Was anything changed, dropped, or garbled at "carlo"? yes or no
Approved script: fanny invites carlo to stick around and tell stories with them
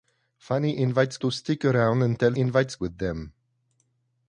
yes